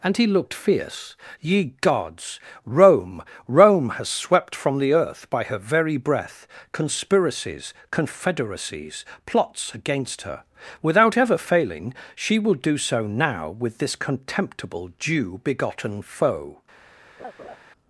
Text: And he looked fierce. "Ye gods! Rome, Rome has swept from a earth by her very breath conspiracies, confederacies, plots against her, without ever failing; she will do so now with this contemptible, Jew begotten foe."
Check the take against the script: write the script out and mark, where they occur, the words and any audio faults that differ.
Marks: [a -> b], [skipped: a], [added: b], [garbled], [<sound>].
And he looked fierce. "Ye gods! Rome, Rome has swept from [a -> the] earth by her very breath conspiracies, confederacies, plots against her, without ever failing; she will do so now with this contemptible, Jew begotten foe." [laugh]